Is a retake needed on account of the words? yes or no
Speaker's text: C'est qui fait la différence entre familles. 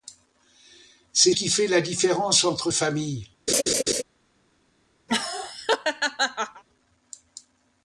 no